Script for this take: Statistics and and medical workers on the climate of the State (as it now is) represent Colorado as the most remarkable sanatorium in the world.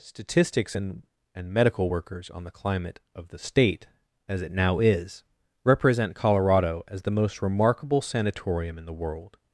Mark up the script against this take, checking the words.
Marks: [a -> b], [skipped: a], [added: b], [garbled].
Statistics and and medical workers on the climate of the State (as it now is) represent Colorado as the most remarkable sanatorium in the world.